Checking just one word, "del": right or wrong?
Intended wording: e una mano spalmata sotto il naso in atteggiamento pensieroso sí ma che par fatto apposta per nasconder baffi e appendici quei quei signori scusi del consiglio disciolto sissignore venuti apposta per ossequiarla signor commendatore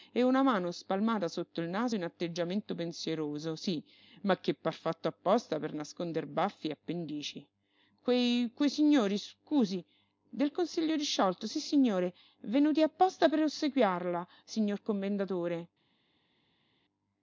right